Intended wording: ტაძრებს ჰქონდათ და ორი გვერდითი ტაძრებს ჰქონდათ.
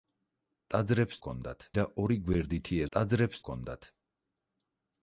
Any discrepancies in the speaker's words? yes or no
no